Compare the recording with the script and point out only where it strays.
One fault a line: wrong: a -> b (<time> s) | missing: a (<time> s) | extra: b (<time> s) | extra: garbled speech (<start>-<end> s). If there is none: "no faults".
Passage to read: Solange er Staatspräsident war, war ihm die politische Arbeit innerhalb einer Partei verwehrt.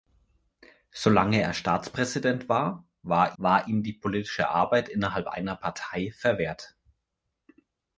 extra: war (3.4 s)